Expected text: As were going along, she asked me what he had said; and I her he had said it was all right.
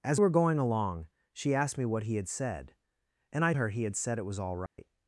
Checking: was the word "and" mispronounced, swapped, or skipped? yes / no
no